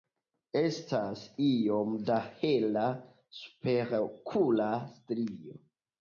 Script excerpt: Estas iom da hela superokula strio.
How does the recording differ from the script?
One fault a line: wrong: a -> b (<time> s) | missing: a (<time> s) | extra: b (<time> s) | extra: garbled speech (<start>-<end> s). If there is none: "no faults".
no faults